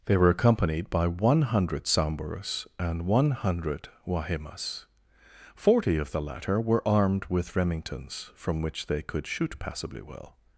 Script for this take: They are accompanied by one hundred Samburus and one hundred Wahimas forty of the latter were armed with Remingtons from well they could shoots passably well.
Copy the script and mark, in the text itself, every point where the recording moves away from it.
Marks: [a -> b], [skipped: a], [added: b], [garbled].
They [are -> were] accompanied by one hundred Samburus and one hundred Wahimas forty of the latter were armed with Remingtons from [well -> which] they could [shoots -> shoot] passably well.